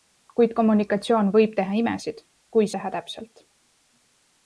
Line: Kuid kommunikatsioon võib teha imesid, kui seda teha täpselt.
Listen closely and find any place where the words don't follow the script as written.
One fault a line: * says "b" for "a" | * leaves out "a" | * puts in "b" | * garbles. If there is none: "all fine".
* leaves out "seda"